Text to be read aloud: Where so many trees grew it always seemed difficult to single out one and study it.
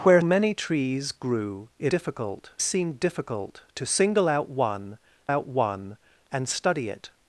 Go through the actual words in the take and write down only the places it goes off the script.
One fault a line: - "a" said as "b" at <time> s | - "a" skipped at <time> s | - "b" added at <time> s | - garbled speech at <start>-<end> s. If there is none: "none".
- "so" skipped at 0.2 s
- "always" said as "difficult" at 1.9 s
- "out one" added at 5.3 s